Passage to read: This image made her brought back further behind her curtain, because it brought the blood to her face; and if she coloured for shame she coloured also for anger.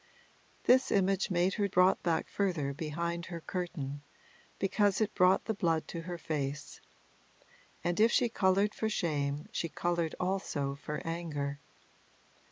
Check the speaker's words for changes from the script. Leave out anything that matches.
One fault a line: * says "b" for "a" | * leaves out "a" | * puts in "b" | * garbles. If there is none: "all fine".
all fine